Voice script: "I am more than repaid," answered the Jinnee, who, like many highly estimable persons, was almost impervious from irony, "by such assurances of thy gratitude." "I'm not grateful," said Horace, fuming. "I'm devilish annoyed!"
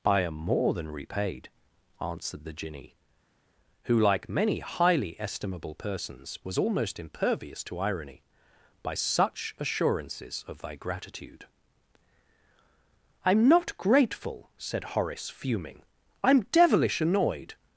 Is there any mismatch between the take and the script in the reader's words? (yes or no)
yes